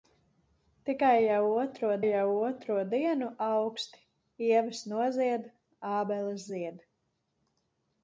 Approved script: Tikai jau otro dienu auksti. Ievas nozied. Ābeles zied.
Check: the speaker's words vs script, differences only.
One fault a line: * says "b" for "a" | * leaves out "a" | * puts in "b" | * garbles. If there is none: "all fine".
* puts in "jau otro"